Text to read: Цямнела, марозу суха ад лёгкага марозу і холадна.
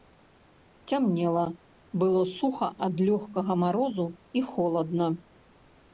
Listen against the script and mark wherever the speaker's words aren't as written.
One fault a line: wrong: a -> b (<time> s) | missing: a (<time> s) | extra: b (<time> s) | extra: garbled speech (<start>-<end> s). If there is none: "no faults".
wrong: марозу -> было (2.0 s)